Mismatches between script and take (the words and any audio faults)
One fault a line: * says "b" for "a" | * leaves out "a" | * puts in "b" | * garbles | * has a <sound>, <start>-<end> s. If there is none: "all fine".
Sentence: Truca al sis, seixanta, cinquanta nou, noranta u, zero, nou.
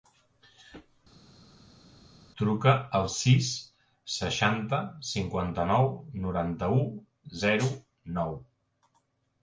all fine